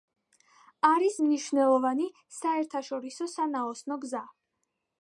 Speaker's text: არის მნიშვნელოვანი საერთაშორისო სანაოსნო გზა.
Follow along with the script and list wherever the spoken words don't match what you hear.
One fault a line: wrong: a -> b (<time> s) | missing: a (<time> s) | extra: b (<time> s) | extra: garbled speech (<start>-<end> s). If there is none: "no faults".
no faults